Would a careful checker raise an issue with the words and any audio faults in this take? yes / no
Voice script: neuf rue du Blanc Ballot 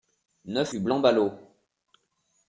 yes